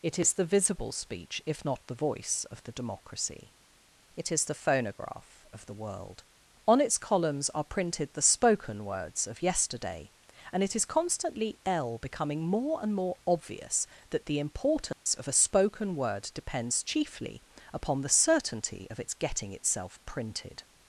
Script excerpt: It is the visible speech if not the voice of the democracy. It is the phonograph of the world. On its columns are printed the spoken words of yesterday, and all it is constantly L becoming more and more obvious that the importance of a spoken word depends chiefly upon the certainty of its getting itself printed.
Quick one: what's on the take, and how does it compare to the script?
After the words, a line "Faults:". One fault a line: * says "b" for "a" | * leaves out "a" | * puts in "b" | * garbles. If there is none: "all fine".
It is the visible speech if not the voice of the democracy. It is the phonograph of the world. On its columns are printed the spoken words of yesterday, and it is constantly L becoming more and more obvious that the importance of a spoken word depends chiefly upon the certainty of its getting itself printed.
Faults:
* leaves out "all"